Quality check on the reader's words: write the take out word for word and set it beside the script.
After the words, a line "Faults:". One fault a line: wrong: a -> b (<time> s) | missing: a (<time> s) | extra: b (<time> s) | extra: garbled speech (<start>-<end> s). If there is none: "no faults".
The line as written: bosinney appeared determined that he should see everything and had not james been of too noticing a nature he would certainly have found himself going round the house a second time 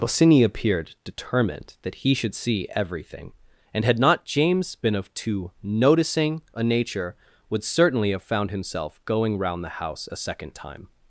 bosinney appeared determined that he should see everything and had not james been of too noticing a nature would certainly have found himself going round the house a second time
Faults:
missing: he (7.2 s)